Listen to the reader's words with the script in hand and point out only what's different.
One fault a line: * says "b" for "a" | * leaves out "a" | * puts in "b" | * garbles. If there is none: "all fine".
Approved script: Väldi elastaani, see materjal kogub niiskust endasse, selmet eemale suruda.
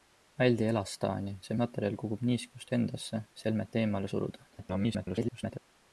* garbles